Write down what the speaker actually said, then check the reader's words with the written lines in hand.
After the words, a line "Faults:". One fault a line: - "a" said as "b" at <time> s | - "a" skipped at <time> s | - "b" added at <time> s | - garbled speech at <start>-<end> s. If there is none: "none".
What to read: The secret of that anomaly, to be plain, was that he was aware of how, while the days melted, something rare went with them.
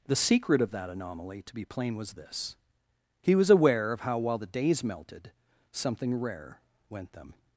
The secret of that anomaly, to be plain, was this he was aware of how, while the days melted, something rare went them.
Faults:
- "that" said as "this" at 2.1 s
- "with" skipped at 7.1 s